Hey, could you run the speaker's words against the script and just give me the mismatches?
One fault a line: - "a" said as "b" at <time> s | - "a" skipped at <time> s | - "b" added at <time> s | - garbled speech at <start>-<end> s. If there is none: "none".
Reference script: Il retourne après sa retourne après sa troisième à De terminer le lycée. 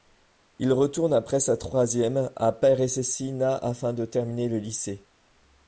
- "retourne après sa troisième à" said as "troisième à Peresecina afin" at 1.6 s